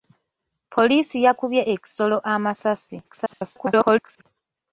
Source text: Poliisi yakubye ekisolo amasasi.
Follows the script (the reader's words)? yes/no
no